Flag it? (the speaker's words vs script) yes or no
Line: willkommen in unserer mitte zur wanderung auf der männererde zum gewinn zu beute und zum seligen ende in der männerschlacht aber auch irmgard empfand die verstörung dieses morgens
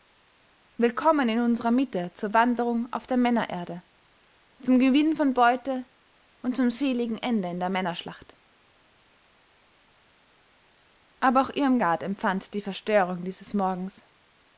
yes